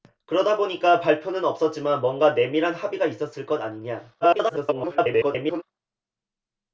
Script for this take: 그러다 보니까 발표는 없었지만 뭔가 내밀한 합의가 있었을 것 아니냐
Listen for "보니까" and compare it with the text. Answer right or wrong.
right